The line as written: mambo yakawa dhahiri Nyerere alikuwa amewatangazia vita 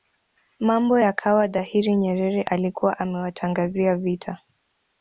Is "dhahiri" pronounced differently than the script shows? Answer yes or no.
no